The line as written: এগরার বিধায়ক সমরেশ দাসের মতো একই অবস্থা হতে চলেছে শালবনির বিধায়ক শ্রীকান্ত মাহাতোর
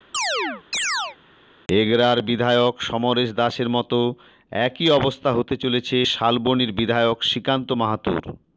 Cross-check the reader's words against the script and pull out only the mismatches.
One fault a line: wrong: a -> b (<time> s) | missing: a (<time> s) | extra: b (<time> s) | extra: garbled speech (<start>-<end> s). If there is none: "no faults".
no faults